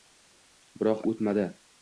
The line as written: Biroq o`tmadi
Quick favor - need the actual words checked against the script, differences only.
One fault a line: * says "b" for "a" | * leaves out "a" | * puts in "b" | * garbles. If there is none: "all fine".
all fine